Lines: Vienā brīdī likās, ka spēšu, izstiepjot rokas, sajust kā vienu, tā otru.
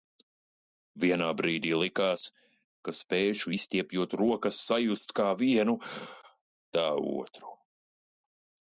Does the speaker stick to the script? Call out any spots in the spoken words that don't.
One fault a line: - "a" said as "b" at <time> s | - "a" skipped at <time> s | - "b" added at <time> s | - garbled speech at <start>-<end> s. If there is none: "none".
none